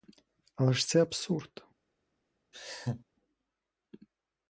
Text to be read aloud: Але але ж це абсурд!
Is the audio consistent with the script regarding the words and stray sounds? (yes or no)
no